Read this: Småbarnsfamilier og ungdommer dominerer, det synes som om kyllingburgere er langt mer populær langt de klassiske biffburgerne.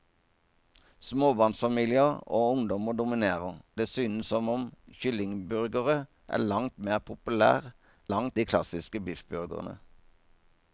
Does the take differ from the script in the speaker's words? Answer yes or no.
no